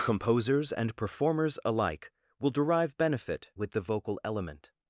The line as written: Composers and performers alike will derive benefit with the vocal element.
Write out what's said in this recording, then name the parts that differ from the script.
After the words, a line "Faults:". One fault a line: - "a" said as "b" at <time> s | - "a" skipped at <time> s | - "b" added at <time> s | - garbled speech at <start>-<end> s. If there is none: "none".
Composers and performers alike will derive benefit with the vocal element.
Faults:
none